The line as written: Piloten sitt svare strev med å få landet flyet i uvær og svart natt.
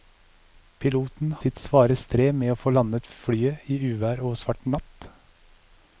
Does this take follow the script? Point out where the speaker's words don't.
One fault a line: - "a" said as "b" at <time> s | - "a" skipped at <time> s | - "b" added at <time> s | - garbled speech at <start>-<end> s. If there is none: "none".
none